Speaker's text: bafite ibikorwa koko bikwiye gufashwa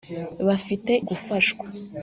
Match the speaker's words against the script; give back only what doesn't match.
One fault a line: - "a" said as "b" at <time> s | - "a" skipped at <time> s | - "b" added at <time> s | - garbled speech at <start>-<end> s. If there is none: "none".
- "ibikorwa koko bikwiye" skipped at 0.9 s